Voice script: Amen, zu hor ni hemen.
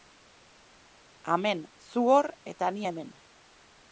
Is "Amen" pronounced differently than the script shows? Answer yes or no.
no